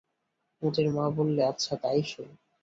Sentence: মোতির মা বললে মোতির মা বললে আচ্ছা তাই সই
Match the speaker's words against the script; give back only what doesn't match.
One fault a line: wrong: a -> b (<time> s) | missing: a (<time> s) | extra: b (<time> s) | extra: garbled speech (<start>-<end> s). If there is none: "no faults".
missing: মোতির মা বললে (1.4 s)